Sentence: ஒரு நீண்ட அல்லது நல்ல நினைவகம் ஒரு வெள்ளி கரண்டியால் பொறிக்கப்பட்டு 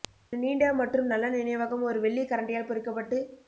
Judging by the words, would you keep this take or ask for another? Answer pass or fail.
fail